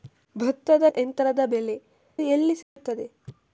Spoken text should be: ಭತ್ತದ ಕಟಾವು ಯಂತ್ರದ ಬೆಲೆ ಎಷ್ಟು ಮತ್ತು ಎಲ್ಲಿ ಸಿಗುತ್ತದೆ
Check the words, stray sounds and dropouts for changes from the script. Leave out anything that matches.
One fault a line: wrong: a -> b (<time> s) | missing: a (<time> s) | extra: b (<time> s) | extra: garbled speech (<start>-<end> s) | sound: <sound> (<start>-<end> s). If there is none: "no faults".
missing: ಕಟಾವು (0.8 s)
missing: ಎಷ್ಟು ಮತ್ತು (1.8 s)
sound: dropout (2.6-2.8 s)